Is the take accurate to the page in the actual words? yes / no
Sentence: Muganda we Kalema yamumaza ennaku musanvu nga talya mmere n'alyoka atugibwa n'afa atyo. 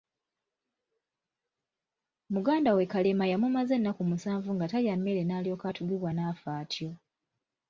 yes